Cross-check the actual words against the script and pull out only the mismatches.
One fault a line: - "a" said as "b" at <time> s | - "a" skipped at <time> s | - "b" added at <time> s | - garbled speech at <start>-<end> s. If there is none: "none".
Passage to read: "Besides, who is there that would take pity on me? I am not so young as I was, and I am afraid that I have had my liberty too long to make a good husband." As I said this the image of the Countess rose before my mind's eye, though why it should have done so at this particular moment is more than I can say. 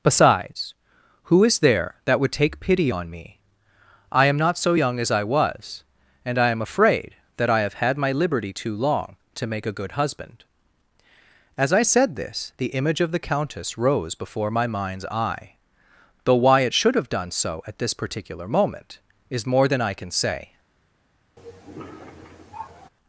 none